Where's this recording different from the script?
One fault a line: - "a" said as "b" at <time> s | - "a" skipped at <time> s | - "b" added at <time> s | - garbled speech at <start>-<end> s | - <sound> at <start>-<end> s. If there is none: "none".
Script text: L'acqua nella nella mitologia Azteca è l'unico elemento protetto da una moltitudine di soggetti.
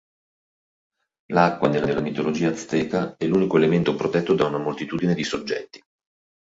none